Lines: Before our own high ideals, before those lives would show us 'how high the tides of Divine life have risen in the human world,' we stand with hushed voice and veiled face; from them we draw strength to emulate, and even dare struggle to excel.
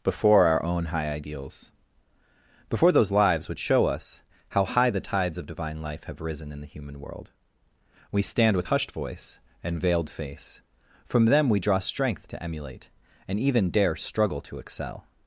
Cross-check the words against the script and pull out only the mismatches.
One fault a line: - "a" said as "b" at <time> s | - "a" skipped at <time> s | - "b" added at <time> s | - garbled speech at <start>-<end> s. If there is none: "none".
none